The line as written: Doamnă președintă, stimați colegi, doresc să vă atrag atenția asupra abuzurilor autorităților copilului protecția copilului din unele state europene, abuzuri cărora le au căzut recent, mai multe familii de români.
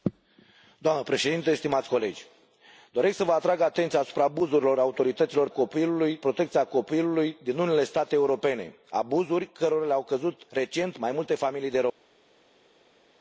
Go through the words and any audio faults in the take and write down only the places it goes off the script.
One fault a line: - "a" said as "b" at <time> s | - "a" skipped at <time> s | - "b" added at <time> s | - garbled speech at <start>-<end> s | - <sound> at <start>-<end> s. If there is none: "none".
none